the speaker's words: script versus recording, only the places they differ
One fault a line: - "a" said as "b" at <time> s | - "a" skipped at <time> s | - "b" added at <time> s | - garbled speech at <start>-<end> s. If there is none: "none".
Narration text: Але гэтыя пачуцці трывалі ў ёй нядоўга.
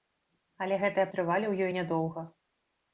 - "пачуцці" skipped at 1.1 s